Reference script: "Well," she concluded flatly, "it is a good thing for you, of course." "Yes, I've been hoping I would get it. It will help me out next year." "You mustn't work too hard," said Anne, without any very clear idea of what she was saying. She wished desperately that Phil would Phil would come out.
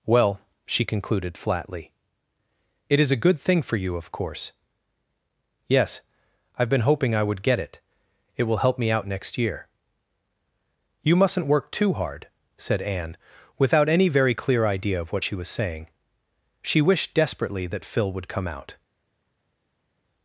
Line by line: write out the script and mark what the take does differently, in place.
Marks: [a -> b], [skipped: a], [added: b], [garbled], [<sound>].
"Well," she concluded flatly, "it is a good thing for you, of course." "Yes, I've been hoping I would get it. It will help me out next year." "You mustn't work too hard," said Anne, without any very clear idea of what she was saying. She wished desperately that Phil would [skipped: Phil would] come out.